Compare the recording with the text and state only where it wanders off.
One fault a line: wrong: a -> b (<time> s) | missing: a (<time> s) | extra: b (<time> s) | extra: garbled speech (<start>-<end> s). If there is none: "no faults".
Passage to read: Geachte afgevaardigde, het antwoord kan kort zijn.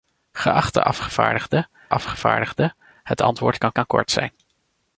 extra: afgevaardigde (1.9 s)
extra: kan (3.7 s)